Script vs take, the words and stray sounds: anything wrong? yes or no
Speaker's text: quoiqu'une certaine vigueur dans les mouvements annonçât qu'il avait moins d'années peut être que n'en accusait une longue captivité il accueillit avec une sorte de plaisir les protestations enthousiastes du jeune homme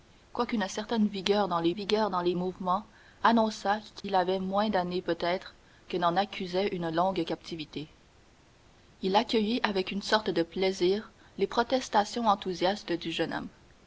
yes